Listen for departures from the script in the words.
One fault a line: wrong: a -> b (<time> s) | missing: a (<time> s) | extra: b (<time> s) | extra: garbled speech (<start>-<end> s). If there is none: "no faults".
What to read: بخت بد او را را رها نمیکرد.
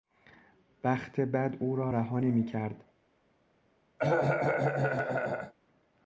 missing: را (1.9 s)